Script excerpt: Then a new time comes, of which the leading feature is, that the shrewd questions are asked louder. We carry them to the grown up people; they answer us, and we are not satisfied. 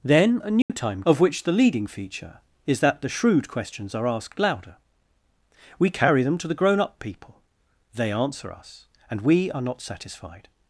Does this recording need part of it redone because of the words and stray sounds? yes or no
yes